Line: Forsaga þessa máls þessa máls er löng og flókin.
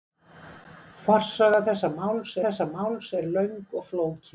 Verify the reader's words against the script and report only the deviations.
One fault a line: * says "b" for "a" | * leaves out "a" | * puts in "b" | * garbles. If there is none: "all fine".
all fine